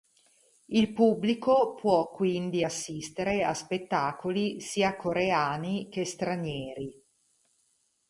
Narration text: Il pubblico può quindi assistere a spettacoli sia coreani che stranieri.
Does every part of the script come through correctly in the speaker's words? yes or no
yes